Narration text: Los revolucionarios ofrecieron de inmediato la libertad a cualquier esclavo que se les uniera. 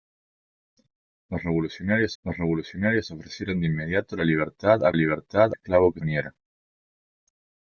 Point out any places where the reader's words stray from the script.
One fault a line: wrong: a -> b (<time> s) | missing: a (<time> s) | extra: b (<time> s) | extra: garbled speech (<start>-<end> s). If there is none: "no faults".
extra: los revolucionarios (2.2 s)
wrong: cualquier -> libertad (4.9 s)
missing: se les (6.0 s)